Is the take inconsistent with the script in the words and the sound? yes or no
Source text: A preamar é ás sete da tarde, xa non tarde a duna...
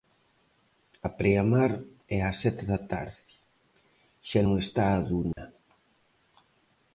yes